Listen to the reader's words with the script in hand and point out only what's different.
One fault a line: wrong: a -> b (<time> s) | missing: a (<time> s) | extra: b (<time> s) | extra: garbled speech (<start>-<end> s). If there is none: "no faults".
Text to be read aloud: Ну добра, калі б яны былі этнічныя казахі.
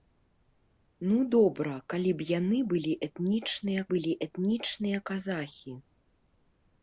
extra: былі этнічныя (3.9 s)